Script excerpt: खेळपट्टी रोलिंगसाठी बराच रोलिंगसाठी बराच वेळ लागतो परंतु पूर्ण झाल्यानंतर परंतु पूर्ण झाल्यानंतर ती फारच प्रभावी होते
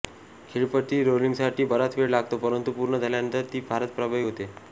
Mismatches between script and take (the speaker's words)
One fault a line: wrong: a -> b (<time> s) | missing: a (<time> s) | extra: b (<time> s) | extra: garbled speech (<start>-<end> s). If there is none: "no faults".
missing: रोलिंगसाठी बराच (2.0 s)
missing: परंतु पूर्ण झाल्यानंतर (3.4 s)